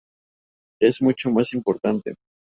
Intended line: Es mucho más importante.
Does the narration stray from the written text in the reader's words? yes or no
no